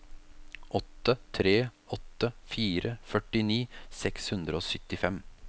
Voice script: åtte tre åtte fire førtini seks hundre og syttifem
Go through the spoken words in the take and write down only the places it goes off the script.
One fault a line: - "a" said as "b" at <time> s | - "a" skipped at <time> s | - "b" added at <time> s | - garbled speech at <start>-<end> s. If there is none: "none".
none